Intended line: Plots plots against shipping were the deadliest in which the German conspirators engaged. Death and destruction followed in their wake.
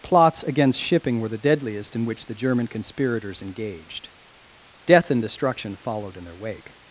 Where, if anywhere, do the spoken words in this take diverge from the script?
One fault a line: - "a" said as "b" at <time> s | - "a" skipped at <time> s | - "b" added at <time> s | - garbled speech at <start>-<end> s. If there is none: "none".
- "plots" skipped at 0.4 s